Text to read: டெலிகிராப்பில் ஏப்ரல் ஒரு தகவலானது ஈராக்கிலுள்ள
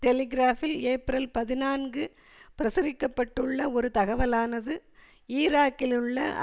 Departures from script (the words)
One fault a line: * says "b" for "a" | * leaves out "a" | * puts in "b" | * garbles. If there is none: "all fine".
* puts in "பதினான்கு பிரசுரிக்க பட்டுள்ள"